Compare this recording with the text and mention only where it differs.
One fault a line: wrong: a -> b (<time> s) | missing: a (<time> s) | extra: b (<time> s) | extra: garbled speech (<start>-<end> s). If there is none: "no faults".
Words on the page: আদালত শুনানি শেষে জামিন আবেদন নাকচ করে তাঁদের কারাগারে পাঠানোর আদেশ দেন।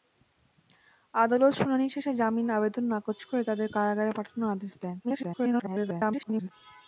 extra: garbled speech (5.0-6.5 s)